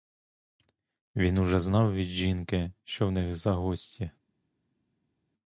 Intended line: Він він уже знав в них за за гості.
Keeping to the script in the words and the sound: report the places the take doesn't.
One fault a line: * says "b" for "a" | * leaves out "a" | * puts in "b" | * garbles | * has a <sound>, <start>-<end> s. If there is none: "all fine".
* leaves out "він"
* puts in "від жінки що"
* leaves out "за"